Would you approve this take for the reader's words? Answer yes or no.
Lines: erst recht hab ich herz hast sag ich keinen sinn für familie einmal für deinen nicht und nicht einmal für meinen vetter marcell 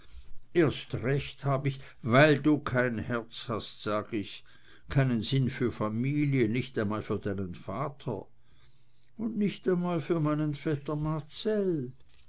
no